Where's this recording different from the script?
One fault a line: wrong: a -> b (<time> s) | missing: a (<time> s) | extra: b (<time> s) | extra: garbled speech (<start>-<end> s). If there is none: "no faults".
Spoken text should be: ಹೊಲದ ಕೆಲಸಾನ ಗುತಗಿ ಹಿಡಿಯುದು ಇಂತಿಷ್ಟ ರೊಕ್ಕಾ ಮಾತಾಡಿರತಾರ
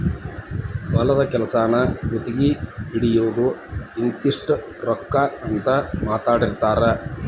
extra: ಅಂತ (5.4 s)